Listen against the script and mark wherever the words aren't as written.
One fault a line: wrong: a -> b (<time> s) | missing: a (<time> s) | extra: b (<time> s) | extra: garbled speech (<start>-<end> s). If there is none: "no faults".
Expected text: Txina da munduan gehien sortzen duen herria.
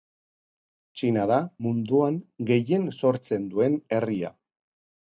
no faults